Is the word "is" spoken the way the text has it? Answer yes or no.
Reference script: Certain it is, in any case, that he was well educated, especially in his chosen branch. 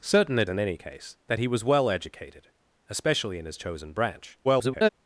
no